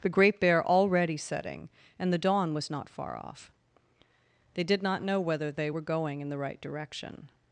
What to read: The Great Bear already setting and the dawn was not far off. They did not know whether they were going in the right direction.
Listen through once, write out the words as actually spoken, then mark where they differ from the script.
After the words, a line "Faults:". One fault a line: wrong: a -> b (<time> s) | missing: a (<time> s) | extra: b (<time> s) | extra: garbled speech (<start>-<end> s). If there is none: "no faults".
The Great Bear already setting and the dawn was not far off. They did not know whether they were going in the right direction.
Faults:
no faults